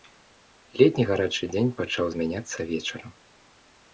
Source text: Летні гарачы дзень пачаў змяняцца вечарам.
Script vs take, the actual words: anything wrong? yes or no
no